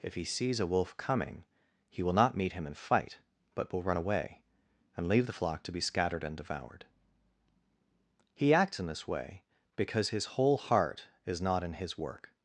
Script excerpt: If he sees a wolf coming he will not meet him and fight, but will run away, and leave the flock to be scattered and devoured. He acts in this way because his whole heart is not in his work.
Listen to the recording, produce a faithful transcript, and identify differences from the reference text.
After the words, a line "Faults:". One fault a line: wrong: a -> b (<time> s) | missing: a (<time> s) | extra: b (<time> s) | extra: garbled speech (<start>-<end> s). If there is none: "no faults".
If he sees a wolf coming he will not meet him and fight, but will run away, and leave the flock to be scattered and devoured. He acts in this way because his whole heart is not in his work.
Faults:
no faults